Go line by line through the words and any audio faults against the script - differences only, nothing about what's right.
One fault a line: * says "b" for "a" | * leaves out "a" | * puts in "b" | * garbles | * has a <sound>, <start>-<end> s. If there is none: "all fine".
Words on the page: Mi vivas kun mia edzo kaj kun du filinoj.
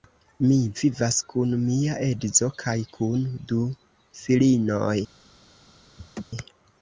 * has a laugh, 6.0-6.2 s